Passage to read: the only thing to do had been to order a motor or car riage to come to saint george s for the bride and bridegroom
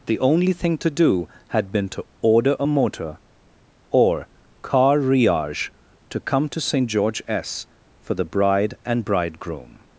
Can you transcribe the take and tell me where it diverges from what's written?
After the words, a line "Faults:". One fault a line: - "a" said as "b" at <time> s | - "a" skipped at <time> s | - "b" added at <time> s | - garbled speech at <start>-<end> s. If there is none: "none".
the only thing to do had been to order a motor or car riage to come to saint george s for the bride and bridegroom
Faults:
none